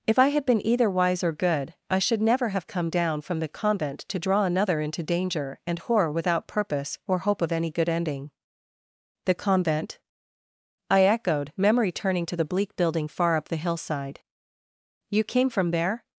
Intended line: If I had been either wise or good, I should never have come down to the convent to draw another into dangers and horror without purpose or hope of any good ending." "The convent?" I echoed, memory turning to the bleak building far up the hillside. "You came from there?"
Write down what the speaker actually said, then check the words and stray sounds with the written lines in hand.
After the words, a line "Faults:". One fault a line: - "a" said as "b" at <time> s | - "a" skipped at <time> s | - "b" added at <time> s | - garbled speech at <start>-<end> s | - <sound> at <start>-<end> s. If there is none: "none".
If I had been either wise or good, I should never have come down from the convent to draw another into danger and horror without purpose or hope of any good ending." "The convent?" I echoed, memory turning to the bleak building far up the hillside. "You came from there?"
Faults:
- "to" said as "from" at 3.2 s
- "dangers" said as "danger" at 5.0 s